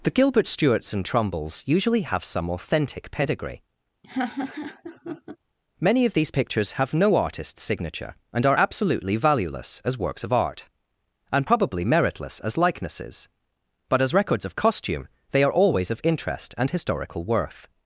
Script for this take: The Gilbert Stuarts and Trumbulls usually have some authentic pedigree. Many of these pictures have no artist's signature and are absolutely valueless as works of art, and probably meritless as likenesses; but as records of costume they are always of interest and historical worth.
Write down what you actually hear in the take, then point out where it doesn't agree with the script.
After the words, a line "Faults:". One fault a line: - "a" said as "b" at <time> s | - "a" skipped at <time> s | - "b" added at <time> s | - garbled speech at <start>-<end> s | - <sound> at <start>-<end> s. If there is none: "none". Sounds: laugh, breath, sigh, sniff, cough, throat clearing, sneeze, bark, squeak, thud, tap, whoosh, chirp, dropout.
The Gilbert Stuarts and Trumbulls usually have some authentic pedigree. Many of these pictures have no artist's signature and are absolutely valueless as works of art, and probably meritless as likenesses; but as records of costume they are always of interest and historical worth.
Faults:
- laugh at 4.0-5.4 s